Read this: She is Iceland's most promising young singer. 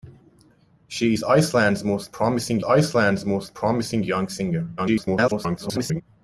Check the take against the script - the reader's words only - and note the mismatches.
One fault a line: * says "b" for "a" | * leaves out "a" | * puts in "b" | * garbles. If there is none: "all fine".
* puts in "Iceland's most promising"
* garbles